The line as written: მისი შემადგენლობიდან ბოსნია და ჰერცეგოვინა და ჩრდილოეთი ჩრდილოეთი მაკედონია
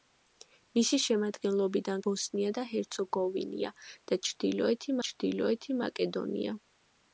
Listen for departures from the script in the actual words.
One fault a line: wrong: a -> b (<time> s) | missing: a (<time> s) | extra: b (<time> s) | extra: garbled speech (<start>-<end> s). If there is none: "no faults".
no faults